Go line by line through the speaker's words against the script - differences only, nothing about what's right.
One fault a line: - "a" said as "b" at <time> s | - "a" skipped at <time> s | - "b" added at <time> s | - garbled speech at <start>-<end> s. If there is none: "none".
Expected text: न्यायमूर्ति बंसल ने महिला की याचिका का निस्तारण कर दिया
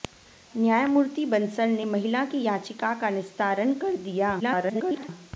- garbled speech at 4.4-5.1 s